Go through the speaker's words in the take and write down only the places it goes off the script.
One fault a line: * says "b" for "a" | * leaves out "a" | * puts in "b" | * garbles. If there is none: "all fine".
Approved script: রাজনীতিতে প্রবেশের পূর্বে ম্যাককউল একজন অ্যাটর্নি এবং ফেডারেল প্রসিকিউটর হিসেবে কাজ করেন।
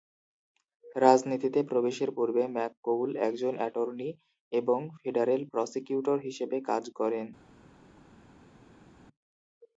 all fine